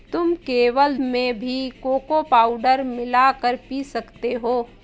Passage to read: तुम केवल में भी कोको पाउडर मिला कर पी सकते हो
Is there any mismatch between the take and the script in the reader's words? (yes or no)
no